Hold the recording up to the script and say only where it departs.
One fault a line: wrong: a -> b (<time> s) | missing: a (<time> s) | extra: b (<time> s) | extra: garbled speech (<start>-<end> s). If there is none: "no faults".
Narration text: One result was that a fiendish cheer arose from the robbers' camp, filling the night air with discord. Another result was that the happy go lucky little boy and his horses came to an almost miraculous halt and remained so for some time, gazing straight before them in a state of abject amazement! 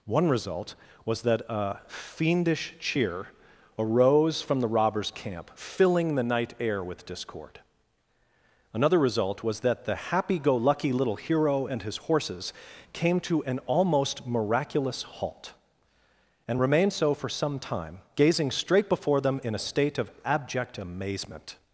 wrong: boy -> hero (11.2 s)